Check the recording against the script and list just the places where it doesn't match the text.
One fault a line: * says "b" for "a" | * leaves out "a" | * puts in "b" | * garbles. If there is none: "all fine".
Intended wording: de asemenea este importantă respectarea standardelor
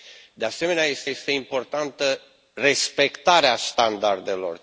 * puts in "este"